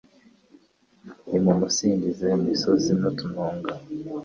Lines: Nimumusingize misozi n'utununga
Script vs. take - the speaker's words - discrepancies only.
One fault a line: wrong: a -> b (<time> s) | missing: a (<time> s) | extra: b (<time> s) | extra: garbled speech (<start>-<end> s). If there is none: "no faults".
no faults